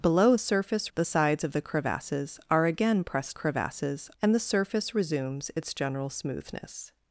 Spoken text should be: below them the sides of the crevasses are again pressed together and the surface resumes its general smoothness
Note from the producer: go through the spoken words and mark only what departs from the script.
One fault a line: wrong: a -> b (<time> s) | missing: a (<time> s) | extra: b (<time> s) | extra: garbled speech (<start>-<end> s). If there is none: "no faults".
wrong: them -> surface (0.4 s)
wrong: together -> crevasses (3.3 s)